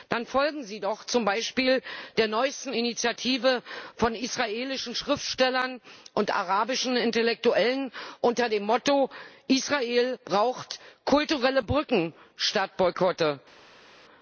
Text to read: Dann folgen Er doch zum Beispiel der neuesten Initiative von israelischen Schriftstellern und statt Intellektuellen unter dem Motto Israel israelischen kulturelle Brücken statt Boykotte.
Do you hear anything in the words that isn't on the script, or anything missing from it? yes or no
yes